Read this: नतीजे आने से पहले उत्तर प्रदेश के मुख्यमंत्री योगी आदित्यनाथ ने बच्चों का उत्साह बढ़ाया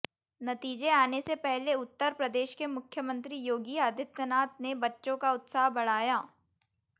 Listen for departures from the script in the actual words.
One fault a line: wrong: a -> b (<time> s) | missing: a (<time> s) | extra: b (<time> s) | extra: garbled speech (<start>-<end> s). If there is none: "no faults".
no faults